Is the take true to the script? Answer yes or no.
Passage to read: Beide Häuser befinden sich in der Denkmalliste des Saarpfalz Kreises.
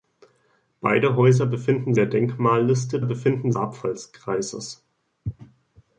no